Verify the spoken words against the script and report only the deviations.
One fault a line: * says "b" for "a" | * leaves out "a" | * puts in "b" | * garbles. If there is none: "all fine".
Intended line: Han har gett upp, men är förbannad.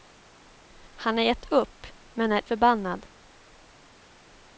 all fine